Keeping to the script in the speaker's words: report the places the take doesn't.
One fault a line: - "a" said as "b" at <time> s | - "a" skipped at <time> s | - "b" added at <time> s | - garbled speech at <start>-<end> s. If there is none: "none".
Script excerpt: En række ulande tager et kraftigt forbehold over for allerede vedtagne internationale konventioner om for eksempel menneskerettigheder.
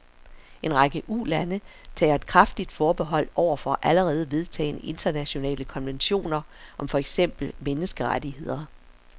none